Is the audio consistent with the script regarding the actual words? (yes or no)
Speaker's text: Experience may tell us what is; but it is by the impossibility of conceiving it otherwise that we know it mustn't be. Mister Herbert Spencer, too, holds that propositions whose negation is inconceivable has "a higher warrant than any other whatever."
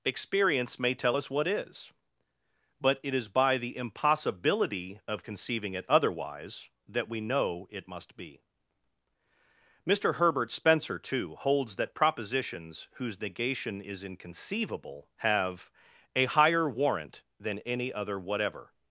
no